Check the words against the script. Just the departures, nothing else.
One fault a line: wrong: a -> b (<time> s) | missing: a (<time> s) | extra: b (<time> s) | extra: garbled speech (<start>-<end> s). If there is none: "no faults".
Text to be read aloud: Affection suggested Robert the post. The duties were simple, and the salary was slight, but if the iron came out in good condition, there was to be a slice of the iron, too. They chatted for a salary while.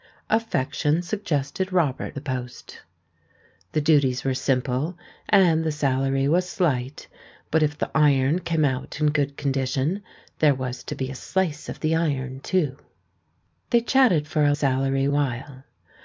no faults